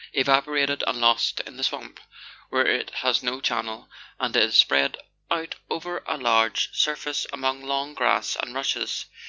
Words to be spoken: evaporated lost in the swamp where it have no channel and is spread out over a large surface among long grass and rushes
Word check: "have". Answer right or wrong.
wrong